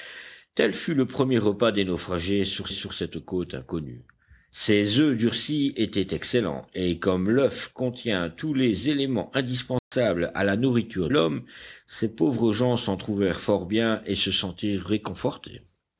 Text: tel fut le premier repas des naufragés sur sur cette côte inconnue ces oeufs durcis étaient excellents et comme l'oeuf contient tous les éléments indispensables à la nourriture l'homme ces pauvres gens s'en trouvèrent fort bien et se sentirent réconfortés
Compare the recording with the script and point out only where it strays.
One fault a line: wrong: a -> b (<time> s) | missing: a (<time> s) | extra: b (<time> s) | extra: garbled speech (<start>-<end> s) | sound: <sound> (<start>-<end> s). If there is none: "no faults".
sound: dropout (9.8-9.9 s)